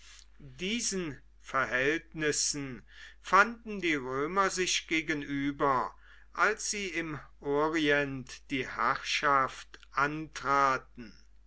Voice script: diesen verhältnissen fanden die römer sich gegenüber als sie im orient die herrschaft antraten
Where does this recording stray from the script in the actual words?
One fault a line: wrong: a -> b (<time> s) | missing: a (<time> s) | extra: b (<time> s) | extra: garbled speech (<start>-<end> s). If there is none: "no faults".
no faults